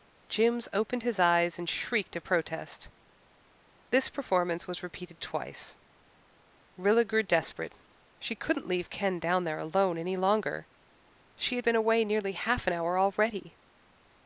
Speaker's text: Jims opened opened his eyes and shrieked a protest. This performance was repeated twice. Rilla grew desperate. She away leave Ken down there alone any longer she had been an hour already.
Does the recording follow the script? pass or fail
fail